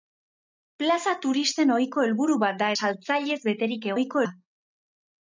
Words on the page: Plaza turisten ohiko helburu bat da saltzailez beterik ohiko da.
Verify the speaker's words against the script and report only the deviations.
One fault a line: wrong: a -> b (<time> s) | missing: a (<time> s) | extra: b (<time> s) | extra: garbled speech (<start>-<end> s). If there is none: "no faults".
no faults